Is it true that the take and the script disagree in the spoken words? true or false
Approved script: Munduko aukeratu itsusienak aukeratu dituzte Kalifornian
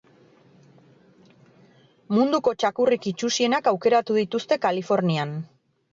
true